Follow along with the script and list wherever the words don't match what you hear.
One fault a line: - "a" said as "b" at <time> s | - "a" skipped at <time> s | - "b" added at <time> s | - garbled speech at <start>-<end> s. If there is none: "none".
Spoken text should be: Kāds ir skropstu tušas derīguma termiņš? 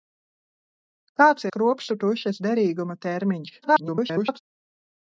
- "ir" skipped at 1.4 s
- garbled speech at 3.6-4.4 s